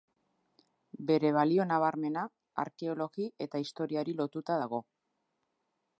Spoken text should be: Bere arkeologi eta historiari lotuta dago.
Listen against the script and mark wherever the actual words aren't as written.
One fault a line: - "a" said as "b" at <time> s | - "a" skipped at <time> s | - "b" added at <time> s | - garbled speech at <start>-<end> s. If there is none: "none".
- "balio nabarmena" added at 1.4 s